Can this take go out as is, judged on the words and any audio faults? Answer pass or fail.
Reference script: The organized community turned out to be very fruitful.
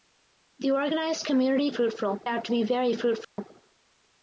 fail